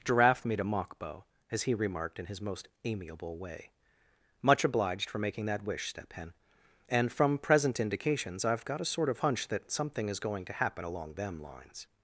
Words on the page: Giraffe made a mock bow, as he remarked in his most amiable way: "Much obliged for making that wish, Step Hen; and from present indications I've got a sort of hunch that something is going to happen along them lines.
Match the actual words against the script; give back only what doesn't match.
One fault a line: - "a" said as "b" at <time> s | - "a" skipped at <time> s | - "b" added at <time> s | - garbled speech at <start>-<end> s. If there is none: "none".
none